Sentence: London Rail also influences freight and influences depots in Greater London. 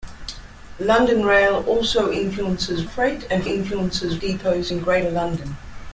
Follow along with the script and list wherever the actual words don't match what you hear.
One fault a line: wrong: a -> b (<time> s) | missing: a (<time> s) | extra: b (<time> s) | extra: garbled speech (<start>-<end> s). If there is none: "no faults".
no faults